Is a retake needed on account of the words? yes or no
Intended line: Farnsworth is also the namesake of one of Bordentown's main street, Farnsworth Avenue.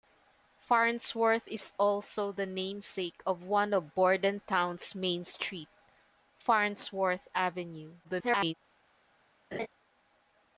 yes